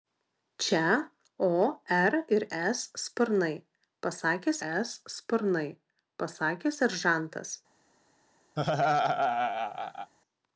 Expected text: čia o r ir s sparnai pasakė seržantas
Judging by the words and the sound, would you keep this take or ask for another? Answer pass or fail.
fail